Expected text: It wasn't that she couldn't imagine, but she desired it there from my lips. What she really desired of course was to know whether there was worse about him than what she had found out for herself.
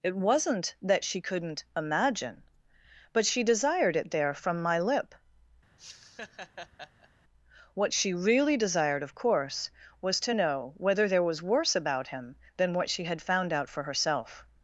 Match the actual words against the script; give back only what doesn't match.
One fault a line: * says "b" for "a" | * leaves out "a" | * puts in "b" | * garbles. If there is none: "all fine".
* says "lip" for "lips"